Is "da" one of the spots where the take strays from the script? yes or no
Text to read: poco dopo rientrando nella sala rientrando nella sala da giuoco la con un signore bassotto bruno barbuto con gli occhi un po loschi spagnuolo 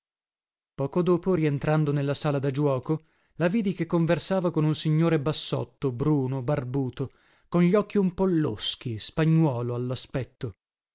yes